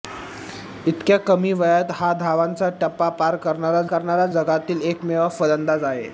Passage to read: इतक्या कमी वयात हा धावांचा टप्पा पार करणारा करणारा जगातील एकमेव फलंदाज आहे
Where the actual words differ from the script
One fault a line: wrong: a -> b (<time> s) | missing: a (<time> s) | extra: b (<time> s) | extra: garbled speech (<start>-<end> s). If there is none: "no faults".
no faults